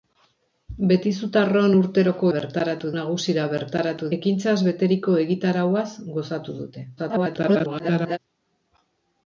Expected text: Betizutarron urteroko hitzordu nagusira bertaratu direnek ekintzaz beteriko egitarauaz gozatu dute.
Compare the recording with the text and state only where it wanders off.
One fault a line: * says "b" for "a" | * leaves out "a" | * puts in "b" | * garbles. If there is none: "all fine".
* says "bertaratu" for "hitzordu"
* leaves out "direnek"
* garbles